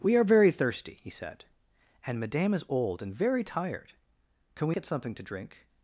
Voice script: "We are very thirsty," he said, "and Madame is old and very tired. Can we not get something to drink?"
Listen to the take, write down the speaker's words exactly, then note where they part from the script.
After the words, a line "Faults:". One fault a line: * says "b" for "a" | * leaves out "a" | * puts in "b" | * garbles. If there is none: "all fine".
"We are very thirsty," he said, "and Madame is old and very tired. Can we get something to drink?"
Faults:
* leaves out "not"